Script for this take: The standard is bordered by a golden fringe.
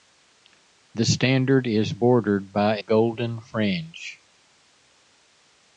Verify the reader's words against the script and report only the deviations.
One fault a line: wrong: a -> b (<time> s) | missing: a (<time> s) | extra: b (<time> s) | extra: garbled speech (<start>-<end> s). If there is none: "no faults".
missing: a (2.8 s)